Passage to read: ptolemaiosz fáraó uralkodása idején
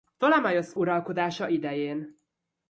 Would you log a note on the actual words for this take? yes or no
yes